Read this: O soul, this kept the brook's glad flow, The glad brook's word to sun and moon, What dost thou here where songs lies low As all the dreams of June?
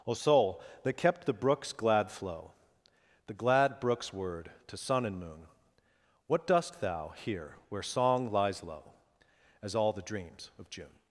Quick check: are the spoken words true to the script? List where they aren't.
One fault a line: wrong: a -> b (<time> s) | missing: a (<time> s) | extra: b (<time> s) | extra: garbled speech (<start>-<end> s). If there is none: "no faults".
wrong: this -> that (0.8 s)
wrong: songs -> song (7.8 s)